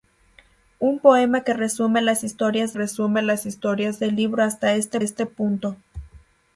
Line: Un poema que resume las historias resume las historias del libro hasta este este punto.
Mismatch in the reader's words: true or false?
false